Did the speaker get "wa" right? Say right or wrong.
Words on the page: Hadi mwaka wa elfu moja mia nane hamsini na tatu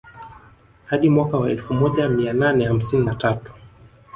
right